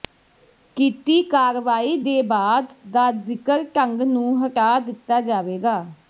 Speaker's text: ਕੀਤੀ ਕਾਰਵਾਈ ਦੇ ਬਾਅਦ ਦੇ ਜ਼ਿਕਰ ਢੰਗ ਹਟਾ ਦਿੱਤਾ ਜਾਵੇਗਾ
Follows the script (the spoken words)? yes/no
no